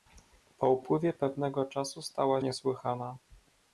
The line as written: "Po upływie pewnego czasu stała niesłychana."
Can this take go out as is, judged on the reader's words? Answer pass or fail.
pass